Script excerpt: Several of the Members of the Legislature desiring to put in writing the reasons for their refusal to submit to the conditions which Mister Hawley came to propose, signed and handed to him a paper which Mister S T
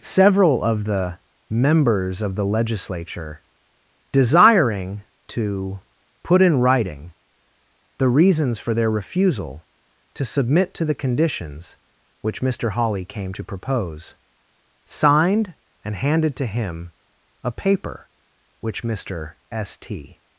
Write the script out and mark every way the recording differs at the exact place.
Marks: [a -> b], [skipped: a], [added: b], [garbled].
Several of the Members of the Legislature desiring to put in writing the reasons for their refusal to submit to the conditions which Mister Hawley came to propose, signed and handed to him a paper which Mister S T